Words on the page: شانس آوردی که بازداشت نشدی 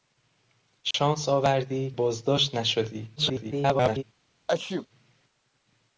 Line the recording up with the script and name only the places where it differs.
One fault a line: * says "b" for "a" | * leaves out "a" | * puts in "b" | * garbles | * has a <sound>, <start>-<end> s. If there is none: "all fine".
* has a dropout, 0.9-0.9 s
* leaves out "که"
* garbles
* has a sneeze, 4.5-4.9 s